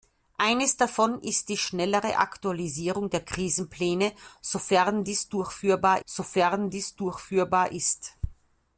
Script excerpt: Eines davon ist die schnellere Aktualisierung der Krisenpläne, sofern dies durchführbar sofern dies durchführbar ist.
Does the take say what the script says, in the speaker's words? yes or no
yes